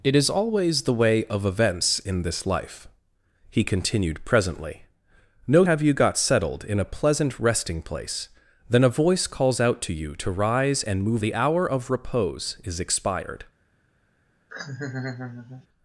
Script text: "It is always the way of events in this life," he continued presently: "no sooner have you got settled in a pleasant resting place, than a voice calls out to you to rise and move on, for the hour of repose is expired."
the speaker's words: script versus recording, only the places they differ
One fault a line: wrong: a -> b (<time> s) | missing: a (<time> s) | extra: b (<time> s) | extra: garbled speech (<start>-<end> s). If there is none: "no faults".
missing: sooner (5.6 s)
missing: on for (11.2 s)